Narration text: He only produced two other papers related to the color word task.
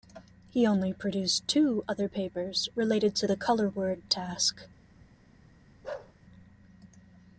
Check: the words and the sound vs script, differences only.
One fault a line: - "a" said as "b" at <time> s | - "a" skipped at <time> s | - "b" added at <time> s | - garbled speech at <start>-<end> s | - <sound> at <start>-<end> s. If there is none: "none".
- bark at 5.8-6.1 s